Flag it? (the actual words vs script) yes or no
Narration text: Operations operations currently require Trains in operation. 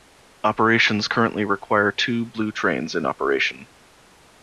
yes